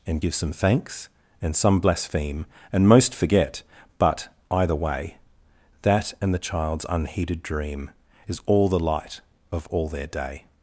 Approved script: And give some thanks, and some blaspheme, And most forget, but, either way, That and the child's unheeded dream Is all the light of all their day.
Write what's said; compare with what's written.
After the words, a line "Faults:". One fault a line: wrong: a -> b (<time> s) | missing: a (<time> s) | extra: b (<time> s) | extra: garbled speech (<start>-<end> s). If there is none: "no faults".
And give some thanks, and some blaspheme, And most forget, but, either way, That and the child's unheeded dream Is all the light of all their day.
Faults:
no faults